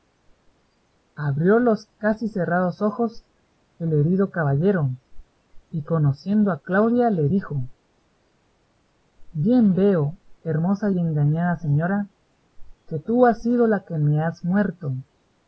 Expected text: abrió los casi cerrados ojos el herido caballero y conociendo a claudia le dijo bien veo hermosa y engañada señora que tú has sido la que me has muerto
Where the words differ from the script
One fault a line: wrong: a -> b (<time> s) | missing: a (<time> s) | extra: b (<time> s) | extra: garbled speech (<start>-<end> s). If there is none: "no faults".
no faults